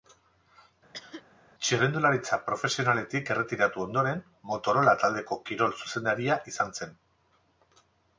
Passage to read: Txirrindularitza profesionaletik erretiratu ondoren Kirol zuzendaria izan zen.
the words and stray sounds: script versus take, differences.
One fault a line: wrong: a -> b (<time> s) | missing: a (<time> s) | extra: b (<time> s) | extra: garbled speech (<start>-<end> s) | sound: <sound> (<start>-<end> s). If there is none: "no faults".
sound: cough (0.9-1.2 s)
extra: Motorola taldeko (4.5 s)